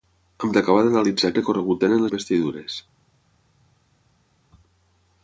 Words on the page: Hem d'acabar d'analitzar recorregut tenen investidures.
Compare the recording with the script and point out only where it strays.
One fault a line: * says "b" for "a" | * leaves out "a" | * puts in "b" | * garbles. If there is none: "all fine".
all fine